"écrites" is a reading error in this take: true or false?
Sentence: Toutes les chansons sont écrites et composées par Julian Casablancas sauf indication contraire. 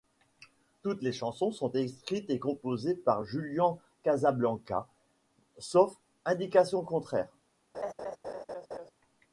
false